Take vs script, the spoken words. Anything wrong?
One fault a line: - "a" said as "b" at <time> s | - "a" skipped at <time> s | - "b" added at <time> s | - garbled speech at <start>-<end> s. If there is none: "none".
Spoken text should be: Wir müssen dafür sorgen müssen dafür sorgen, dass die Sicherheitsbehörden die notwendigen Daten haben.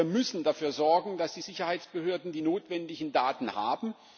- "müssen dafür sorgen" skipped at 1.2 s